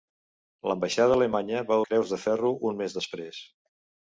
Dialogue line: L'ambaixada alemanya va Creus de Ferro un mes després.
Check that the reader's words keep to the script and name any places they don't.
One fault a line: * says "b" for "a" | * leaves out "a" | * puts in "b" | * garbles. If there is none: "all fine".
all fine